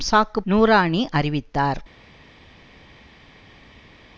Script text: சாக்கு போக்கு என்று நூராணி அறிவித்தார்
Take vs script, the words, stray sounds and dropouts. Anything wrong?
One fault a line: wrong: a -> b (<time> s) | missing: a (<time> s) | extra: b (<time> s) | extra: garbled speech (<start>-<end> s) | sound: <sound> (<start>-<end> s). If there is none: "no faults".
missing: போக்கு என்று (0.4 s)